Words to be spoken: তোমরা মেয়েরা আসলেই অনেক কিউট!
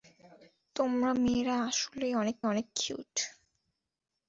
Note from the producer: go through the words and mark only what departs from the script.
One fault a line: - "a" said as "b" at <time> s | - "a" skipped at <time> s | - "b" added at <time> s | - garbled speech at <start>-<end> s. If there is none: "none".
- "অনেক" added at 2.4 s